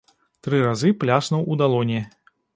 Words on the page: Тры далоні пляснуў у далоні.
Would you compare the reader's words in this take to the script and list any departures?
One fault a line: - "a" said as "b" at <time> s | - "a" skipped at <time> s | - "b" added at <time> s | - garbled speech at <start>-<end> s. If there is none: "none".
- "далоні" said as "разы" at 0.7 s